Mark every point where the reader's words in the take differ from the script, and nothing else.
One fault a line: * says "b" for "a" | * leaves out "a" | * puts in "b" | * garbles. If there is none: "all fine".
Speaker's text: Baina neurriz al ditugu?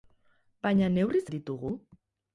all fine